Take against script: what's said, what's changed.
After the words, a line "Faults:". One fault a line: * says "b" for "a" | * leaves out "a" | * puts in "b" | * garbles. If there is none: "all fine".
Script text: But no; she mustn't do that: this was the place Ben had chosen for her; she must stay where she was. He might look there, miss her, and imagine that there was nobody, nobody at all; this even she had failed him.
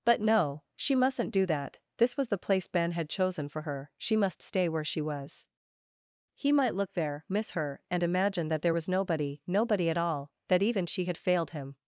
But no; she mustn't do that: this was the place Ben had chosen for her; she must stay where she was. He might look there, miss her, and imagine that there was nobody, nobody at all; that even she had failed him.
Faults:
* says "that" for "this"